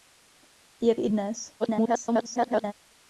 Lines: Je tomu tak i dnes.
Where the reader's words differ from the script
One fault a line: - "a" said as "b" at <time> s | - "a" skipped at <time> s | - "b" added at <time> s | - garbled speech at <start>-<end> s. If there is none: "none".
- "tomu tak" skipped at 0.9 s
- garbled speech at 1.6-2.7 s